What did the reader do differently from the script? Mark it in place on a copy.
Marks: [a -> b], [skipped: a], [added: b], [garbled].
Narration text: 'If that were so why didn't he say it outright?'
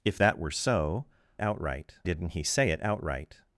'If that were so [why -> outright] didn't he say it outright?'